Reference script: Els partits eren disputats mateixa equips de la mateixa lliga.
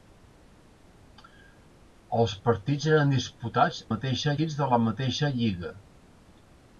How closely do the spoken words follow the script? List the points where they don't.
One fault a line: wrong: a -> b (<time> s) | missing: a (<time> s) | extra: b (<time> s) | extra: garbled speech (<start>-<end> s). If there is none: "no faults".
no faults